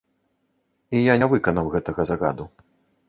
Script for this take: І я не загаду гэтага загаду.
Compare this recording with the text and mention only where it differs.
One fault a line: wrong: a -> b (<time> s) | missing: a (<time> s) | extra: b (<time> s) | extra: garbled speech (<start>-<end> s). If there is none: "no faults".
wrong: загаду -> выканаў (1.3 s)